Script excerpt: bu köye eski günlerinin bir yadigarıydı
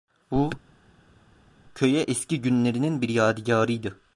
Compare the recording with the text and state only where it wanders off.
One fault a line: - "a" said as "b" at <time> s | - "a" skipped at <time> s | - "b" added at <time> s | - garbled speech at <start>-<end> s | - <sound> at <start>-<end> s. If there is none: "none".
none